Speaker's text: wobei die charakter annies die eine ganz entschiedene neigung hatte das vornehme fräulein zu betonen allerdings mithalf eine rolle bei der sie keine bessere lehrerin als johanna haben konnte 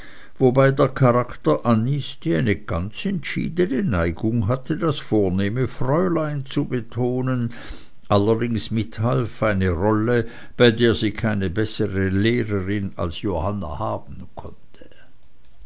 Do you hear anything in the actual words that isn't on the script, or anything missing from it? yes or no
yes